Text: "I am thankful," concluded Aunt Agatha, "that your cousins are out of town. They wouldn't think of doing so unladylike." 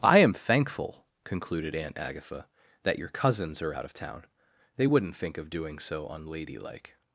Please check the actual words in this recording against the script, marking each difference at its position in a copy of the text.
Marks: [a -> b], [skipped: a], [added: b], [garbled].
"I am thankful," concluded Aunt Agatha, "that your cousins are out of town. They wouldn't think of doing so unladylike."